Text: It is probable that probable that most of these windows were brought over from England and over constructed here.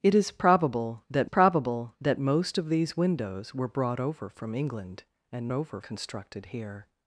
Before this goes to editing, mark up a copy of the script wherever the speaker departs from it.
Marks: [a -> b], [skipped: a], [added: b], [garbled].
It is probable that probable that most of these windows were brought over from England and over constructed here.